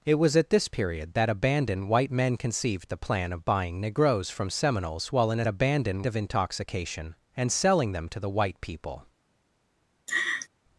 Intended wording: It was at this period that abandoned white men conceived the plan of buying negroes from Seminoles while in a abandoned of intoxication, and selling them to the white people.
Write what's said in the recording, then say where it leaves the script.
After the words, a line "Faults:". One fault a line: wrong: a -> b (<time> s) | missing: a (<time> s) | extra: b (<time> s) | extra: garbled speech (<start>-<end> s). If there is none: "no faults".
It was at this period that abandoned white men conceived the plan of buying negroes from Seminoles while in a abandoned of intoxication, and selling them to the white people.
Faults:
no faults